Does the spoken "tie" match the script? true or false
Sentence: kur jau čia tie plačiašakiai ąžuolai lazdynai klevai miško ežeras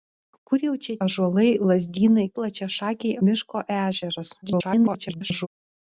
false